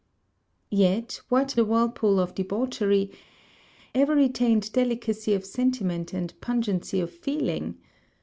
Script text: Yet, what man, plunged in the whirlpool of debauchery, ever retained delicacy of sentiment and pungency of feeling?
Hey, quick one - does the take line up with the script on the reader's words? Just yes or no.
no